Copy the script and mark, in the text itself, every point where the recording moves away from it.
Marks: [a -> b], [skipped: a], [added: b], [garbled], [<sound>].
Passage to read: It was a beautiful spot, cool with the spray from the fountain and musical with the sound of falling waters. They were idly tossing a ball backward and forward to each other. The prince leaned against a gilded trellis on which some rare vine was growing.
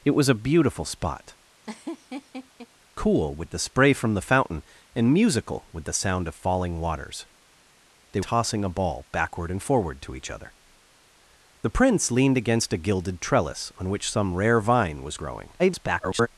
It was a beautiful spot, [laugh] cool with the spray from the fountain and musical with the sound of falling waters. They [skipped: were idly] tossing a ball backward and forward to each other. The prince leaned against a gilded trellis on which some rare vine was growing. [garbled]